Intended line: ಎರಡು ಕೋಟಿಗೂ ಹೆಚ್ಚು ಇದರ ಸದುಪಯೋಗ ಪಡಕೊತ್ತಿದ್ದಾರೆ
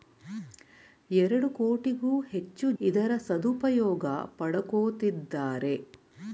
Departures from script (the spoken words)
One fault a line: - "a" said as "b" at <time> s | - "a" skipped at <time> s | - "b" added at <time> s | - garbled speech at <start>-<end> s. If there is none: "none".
none